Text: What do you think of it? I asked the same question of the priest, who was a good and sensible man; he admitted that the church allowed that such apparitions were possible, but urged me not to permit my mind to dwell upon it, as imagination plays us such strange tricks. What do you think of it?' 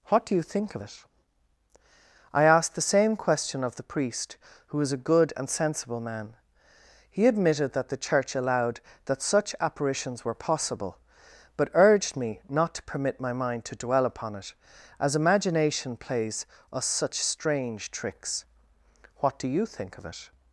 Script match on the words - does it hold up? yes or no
yes